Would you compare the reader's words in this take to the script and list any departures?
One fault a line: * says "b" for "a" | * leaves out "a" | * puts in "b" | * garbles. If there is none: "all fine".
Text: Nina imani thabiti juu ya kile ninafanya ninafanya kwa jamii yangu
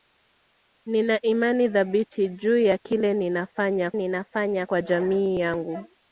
all fine